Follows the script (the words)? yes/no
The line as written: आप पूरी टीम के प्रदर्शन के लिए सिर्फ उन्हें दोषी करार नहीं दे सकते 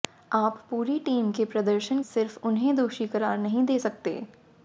no